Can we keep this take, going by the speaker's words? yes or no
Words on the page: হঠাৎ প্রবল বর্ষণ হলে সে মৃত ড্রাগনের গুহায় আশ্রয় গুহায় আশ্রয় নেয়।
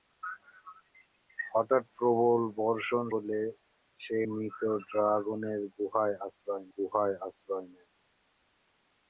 yes